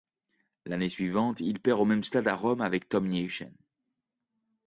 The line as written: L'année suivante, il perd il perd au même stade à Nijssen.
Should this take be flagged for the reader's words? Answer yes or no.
yes